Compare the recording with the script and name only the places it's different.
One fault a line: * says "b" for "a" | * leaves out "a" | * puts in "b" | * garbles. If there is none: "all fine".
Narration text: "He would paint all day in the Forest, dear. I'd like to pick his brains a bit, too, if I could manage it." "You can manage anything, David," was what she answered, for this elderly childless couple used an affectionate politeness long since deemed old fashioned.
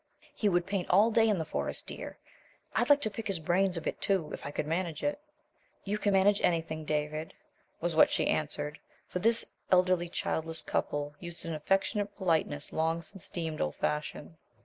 all fine